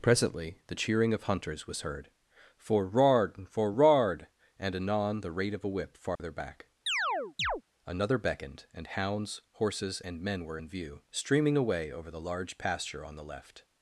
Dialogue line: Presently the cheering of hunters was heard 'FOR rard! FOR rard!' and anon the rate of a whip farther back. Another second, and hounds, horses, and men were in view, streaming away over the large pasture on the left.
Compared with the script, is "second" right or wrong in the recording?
wrong